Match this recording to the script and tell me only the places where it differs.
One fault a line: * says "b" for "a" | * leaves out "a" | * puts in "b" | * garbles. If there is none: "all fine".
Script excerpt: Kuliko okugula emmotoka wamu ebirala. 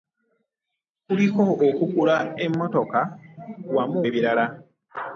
all fine